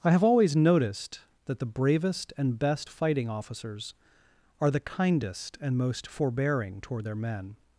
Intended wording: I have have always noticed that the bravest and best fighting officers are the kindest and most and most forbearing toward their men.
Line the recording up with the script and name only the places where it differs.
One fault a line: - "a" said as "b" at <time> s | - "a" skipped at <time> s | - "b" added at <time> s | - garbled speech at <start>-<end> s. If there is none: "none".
- "have" skipped at 0.2 s
- "and most" skipped at 6.1 s